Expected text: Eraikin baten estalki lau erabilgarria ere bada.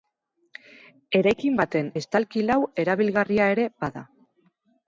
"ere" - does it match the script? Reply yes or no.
yes